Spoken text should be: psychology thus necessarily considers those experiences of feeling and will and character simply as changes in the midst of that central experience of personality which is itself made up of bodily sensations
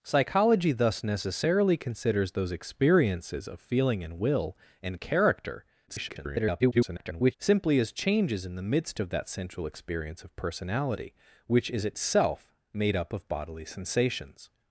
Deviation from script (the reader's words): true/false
true